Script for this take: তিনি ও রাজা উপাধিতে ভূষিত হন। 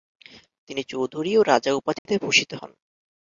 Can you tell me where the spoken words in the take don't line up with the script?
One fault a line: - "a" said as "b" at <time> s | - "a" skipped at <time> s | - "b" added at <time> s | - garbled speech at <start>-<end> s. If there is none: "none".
- "চৌধুরী" added at 0.8 s